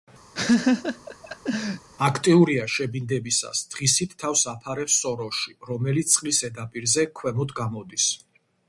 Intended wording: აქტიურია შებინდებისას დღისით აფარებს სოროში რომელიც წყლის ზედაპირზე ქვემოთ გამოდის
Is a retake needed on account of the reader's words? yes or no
yes